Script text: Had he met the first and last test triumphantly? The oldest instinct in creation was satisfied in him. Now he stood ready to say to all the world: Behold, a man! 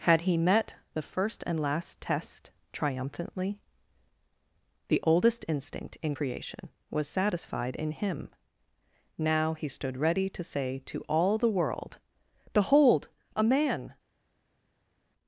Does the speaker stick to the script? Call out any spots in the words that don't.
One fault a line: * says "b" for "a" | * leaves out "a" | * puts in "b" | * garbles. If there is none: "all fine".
all fine